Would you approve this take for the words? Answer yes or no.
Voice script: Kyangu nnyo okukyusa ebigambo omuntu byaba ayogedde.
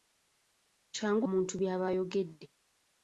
no